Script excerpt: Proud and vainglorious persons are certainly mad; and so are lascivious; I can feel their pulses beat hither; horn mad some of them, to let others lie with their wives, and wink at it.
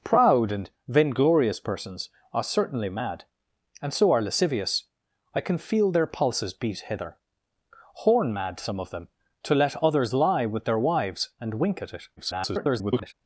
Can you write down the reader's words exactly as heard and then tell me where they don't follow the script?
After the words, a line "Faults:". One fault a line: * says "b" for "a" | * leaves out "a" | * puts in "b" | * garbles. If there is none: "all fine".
Proud and vainglorious persons are certainly mad; and so are lascivious; I can feel their pulses beat hither; horn mad some of them, to let others lie with their wives, and wink at it. [garbled]
Faults:
* garbles